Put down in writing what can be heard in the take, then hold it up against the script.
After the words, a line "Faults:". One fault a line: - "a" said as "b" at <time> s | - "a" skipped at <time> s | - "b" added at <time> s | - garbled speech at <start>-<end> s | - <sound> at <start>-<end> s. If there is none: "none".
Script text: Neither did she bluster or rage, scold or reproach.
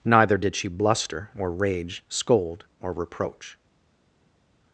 Neither did she bluster or rage, scold or reproach.
Faults:
none